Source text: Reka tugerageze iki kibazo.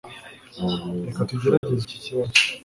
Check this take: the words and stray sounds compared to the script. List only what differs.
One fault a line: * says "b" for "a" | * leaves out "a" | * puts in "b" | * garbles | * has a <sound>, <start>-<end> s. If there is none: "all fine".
* has a dropout, 1.6-1.6 s